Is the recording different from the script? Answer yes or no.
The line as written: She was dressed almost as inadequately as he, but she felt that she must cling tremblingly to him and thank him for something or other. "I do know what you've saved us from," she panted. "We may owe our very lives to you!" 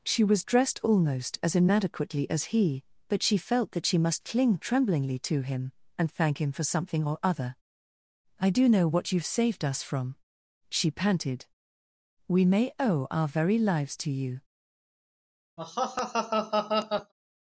no